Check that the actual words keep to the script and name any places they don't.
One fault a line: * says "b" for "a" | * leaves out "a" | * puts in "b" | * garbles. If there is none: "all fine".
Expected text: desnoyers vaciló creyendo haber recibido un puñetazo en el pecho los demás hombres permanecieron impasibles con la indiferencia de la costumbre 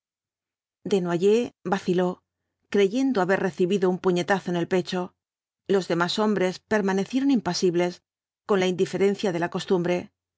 all fine